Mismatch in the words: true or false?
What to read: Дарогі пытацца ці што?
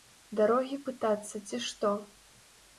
false